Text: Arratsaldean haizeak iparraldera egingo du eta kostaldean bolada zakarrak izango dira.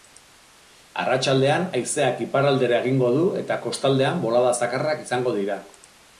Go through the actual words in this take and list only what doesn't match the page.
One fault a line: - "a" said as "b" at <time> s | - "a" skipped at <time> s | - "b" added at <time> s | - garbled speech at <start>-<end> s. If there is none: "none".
none